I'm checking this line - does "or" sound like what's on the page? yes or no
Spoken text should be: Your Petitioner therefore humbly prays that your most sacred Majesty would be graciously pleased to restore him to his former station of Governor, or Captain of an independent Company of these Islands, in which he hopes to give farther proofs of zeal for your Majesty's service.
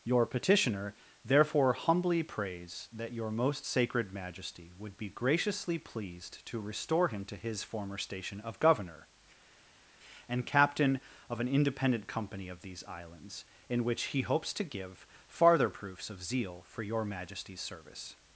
no